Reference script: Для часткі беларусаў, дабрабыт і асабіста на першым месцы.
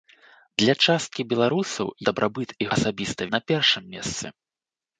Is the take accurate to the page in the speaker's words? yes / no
yes